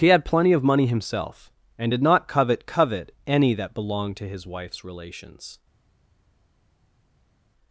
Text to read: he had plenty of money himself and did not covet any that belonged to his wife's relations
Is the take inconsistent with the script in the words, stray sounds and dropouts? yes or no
yes